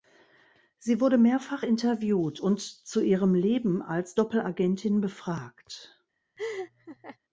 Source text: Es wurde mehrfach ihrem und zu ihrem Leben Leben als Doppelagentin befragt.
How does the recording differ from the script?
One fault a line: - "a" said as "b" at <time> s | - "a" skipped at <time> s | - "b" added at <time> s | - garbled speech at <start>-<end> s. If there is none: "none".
- "Es" said as "Sie" at 0.8 s
- "ihrem" said as "interviewt" at 1.6 s
- "Leben" skipped at 3.8 s